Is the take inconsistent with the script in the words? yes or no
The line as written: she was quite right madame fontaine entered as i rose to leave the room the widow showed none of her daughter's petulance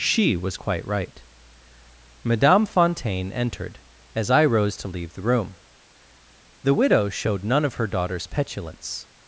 no